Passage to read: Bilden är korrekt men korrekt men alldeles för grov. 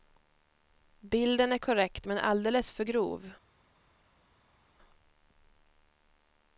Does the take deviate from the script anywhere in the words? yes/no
yes